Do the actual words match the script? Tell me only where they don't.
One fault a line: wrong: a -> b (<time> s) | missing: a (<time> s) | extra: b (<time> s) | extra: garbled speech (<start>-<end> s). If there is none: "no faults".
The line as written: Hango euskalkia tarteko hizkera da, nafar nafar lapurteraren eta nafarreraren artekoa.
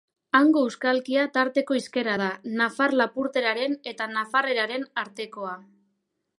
missing: nafar (3.0 s)